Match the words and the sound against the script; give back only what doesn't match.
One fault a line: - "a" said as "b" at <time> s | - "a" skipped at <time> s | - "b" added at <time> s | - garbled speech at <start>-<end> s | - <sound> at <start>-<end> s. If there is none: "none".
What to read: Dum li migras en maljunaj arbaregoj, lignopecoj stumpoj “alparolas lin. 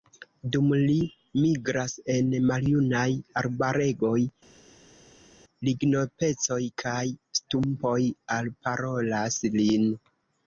- "kaj" added at 6.9 s